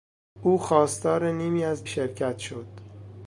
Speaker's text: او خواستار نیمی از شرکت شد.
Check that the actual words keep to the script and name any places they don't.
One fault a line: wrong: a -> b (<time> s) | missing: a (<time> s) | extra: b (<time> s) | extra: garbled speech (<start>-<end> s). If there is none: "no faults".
no faults